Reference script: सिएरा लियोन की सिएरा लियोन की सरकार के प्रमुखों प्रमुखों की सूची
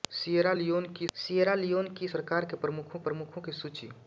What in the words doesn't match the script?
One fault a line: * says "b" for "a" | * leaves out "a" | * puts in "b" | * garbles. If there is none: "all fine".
all fine